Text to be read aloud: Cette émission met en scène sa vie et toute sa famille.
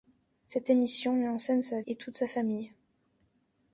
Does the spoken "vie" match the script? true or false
false